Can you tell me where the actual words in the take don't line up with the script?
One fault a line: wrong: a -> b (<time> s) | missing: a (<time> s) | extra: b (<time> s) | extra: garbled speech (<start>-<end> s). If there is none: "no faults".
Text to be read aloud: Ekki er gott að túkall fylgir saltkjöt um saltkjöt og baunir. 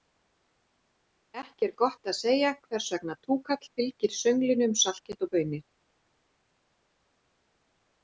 extra: segja hvers vegna (2.2 s)
wrong: saltkjöt -> sönglinu (4.2 s)